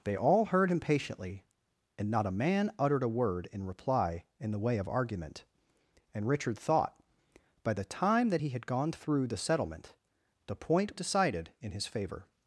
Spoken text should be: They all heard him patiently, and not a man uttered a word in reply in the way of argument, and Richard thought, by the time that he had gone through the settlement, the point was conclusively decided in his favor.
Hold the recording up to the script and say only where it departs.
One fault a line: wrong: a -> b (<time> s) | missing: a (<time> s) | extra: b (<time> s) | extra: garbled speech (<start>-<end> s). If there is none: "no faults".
missing: was conclusively (11.0 s)